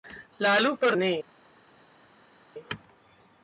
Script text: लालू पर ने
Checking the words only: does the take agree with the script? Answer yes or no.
yes